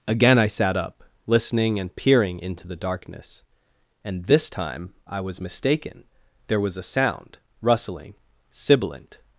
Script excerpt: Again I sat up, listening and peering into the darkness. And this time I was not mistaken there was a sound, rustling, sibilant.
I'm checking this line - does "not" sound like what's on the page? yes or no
no